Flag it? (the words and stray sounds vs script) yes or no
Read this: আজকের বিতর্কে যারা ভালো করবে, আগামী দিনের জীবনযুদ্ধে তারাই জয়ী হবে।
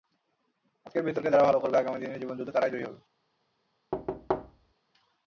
yes